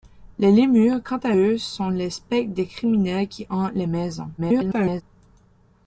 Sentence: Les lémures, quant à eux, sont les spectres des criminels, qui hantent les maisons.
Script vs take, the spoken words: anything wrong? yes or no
yes